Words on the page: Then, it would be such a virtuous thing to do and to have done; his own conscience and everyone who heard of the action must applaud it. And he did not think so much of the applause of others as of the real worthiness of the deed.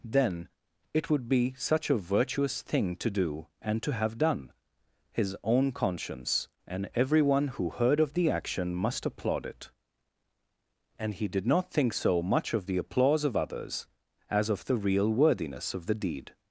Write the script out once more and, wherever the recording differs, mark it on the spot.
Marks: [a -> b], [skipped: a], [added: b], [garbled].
Then, it would be such a virtuous thing to do and to have done; his own conscience and everyone who heard of the action must applaud it. And he did not think so much of the applause of others as of the real worthiness of the deed.